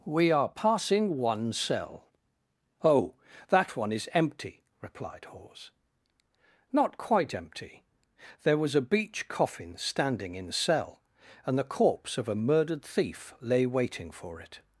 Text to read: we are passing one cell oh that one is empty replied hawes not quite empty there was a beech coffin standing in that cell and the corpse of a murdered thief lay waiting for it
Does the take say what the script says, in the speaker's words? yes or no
no